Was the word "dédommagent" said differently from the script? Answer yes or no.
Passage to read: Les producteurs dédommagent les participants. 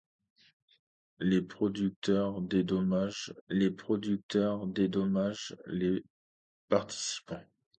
no